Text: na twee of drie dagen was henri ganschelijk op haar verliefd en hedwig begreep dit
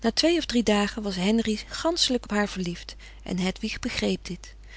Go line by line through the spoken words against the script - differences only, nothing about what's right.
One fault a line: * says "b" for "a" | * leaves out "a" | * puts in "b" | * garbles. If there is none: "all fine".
all fine